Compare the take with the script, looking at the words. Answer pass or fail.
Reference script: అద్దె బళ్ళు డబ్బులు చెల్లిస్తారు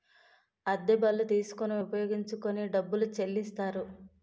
fail